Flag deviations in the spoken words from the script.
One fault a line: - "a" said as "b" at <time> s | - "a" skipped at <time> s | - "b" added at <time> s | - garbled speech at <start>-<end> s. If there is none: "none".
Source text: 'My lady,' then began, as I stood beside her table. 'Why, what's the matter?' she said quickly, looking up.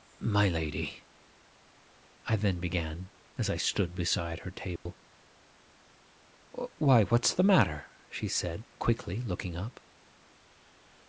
- "I" added at 2.2 s